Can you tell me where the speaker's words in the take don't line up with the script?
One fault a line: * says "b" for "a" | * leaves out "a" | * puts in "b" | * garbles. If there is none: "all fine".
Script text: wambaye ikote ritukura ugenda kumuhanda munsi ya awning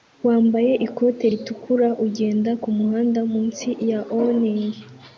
all fine